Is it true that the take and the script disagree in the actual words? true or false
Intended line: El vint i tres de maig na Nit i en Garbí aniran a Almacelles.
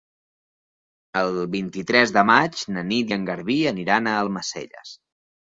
false